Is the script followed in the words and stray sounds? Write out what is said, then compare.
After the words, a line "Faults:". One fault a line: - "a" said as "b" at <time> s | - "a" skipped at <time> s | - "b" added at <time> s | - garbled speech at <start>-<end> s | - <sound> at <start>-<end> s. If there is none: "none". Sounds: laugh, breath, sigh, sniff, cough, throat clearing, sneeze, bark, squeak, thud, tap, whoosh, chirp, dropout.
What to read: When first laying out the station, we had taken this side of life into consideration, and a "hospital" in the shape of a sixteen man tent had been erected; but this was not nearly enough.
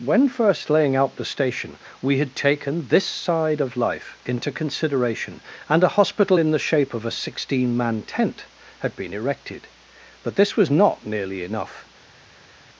When first laying out the station, we had taken this side of life into consideration, and a "hospital" in the shape of a sixteen man tent had been erected; but this was not nearly enough.
Faults:
none